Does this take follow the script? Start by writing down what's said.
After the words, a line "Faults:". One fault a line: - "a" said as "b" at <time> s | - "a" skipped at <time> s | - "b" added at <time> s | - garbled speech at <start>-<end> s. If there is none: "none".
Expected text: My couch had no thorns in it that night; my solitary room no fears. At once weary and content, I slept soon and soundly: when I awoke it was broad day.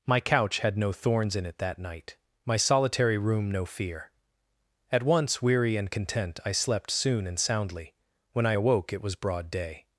My couch had no thorns in it that night; my solitary room no fear. At once weary and content, I slept soon and soundly: when I awoke it was broad day.
Faults:
- "fears" said as "fear" at 3.6 s